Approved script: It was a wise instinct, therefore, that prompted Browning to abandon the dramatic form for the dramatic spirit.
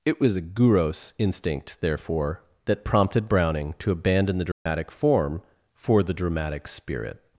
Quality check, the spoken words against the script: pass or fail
fail